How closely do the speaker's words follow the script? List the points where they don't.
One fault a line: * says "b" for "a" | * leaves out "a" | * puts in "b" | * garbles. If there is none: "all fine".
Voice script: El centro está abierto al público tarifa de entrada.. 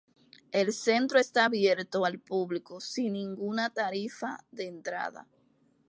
* puts in "sin ninguna"